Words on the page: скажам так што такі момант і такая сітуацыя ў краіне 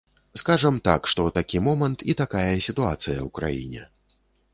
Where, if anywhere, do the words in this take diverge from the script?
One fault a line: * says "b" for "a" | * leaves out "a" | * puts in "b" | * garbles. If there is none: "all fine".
all fine